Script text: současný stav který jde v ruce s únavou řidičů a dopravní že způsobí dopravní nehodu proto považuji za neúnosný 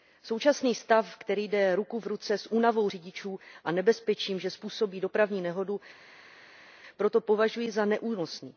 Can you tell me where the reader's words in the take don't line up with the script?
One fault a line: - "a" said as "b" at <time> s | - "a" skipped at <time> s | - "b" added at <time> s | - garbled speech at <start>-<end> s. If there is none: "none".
- "ruku" added at 1.8 s
- "dopravní" said as "nebezpečím" at 3.7 s